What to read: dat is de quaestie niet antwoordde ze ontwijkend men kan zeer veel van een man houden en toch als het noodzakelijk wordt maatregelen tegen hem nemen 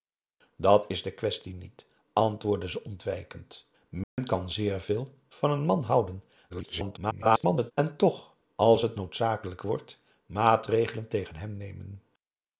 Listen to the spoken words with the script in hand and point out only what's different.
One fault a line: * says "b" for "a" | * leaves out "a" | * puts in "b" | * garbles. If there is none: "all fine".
* garbles